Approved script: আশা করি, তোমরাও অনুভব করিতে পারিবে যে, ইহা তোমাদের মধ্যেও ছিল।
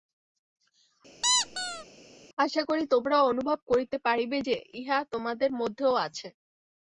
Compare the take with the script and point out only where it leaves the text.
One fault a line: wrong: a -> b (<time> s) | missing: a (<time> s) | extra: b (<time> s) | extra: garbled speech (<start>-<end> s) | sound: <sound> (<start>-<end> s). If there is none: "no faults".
sound: squeak (1.2-1.9 s)
wrong: ছিল -> আছে (6.1 s)